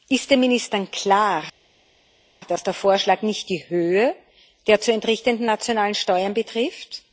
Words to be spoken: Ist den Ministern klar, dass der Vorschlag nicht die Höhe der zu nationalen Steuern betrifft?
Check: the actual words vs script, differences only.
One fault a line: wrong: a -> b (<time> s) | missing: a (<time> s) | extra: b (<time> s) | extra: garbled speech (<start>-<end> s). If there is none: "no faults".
extra: entrichtenden (4.9 s)